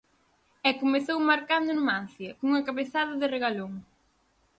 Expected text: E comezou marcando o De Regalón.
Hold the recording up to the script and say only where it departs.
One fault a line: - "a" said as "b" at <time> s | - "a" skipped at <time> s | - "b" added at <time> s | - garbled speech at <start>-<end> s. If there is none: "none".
- "Numancia cunha cabezada" added at 1.8 s